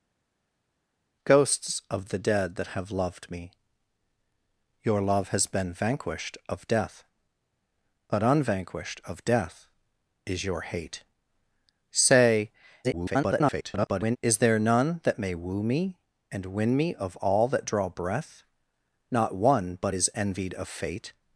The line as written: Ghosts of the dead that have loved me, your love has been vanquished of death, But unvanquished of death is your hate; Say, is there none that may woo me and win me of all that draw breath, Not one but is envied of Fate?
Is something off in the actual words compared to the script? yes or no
yes